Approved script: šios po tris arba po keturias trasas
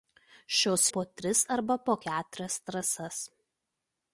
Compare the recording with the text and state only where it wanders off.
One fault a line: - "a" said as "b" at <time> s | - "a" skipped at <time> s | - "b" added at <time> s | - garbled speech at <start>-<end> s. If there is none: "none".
none